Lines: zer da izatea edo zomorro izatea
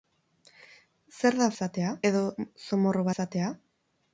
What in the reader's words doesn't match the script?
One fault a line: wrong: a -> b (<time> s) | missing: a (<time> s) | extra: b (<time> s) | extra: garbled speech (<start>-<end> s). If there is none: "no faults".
no faults